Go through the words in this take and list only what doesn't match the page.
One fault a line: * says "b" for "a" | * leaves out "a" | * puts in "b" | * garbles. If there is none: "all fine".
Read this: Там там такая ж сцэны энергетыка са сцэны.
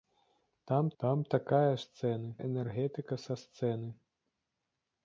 all fine